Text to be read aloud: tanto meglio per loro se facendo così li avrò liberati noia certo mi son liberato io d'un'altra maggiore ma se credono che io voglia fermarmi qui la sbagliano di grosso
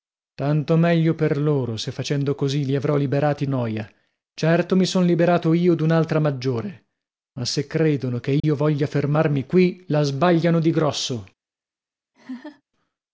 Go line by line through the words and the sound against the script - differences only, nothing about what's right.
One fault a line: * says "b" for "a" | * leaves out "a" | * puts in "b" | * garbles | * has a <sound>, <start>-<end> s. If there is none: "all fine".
* has a dropout, 8.4-8.4 s
* has a laugh, 12.1-12.6 s